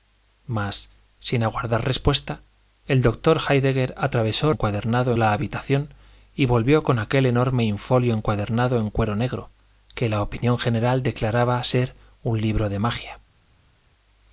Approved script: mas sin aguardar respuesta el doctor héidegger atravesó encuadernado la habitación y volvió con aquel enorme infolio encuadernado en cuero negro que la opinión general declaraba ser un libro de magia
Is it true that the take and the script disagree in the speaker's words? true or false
false